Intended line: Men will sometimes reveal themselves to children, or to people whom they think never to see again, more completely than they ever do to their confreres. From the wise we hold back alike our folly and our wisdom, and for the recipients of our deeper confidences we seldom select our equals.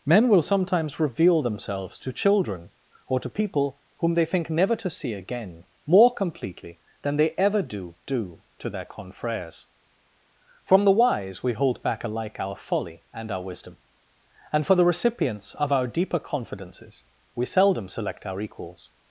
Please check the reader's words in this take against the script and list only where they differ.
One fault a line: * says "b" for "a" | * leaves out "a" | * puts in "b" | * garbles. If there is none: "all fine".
* puts in "do"